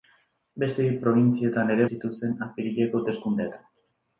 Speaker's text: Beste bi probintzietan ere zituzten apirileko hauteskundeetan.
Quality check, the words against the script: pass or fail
pass